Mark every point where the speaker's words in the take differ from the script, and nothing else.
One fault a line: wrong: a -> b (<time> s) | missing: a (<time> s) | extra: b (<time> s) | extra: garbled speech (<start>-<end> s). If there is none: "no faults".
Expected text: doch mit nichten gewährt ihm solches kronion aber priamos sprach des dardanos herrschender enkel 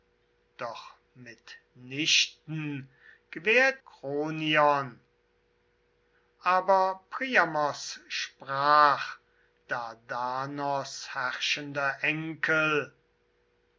missing: ihm solches (3.8 s)
missing: des (9.2 s)